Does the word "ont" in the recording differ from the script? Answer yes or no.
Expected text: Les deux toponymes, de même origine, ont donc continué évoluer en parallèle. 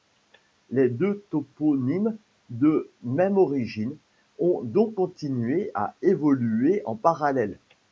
no